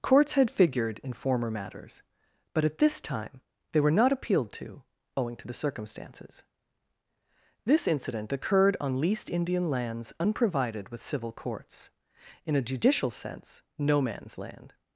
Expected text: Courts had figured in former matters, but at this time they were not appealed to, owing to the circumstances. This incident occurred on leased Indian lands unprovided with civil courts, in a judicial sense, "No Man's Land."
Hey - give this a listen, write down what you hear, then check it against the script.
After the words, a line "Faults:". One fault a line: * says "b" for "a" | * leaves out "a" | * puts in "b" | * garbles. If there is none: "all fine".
Courts had figured in former matters, but at this time they were not appealed to, owing to the circumstances. This incident occurred on leased Indian lands unprovided with civil courts, in a judicial sense, "No Man's Land."
Faults:
all fine